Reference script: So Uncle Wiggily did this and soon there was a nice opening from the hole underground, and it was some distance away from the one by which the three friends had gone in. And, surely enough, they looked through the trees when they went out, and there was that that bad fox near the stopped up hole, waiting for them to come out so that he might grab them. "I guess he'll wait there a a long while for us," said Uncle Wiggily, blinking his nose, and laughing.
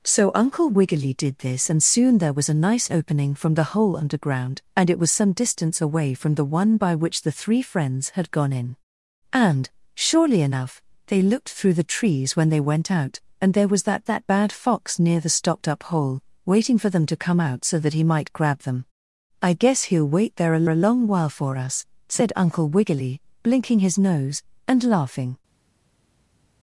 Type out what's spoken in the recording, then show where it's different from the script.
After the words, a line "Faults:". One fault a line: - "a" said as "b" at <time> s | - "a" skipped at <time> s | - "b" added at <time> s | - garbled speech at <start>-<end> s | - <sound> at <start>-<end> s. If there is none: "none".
So Uncle Wiggily did this and soon there was a nice opening from the hole underground, and it was some distance away from the one by which the three friends had gone in. And, surely enough, they looked through the trees when they went out, and there was that that bad fox near the stopped up hole, waiting for them to come out so that he might grab them. "I guess he'll wait there a a long while for us," said Uncle Wiggily, blinking his nose, and laughing.
Faults:
none